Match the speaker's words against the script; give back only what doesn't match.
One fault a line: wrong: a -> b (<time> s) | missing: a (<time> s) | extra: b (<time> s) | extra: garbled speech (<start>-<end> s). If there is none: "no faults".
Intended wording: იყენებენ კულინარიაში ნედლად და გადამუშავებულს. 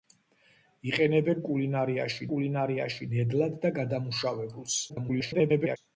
extra: კულინარიაში (2.3 s)
extra: garbled speech (4.9-5.8 s)